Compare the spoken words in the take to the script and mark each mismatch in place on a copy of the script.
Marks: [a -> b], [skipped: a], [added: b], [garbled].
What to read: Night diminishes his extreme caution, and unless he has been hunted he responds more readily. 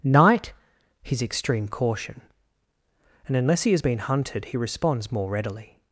Night [skipped: diminishes] his extreme caution, and unless he has been hunted he responds more readily.